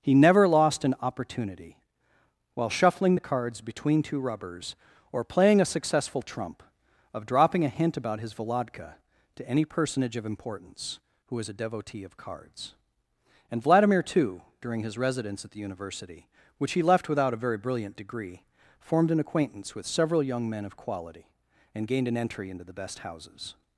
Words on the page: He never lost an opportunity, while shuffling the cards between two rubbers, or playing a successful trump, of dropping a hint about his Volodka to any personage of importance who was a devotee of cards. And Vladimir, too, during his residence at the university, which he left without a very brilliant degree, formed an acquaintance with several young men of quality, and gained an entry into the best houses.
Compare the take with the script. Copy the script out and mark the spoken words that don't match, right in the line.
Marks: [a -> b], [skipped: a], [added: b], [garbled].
He never lost an opportunity, while shuffling the cards between two rubbers, or playing a successful trump, of dropping a hint about his Volodka to any personage of importance who was a devotee of cards. And Vladimir, too, during his residence at the university, which he left without a very brilliant degree, formed an acquaintance with several young men of quality, and gained an entry into the best houses.